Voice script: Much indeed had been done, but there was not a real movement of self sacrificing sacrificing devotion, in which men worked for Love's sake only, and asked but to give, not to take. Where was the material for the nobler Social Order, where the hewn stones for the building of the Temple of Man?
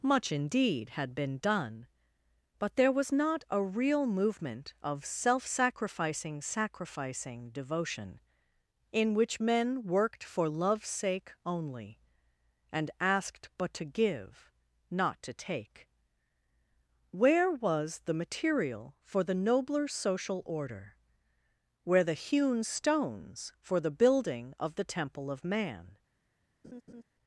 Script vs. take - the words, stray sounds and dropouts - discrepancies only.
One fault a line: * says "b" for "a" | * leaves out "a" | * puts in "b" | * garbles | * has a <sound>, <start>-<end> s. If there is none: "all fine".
* has a laugh, 26.6-27.0 s